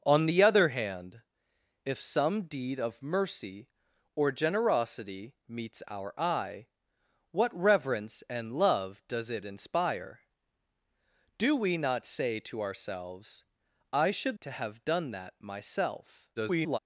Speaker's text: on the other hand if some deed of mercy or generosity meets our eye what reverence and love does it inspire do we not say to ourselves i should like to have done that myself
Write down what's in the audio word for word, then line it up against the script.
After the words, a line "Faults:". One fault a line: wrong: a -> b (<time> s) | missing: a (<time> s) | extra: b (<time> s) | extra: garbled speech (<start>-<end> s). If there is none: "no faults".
on the other hand if some deed of mercy or generosity meets our eye what reverence and love does it inspire do we not say to ourselves i should to have done that myself [garbled]
Faults:
missing: like (14.4 s)
extra: garbled speech (16.4-16.8 s)